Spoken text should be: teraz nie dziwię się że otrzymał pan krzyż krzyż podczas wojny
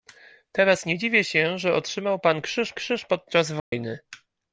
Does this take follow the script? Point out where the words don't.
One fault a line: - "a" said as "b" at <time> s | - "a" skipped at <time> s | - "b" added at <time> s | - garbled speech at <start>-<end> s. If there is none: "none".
none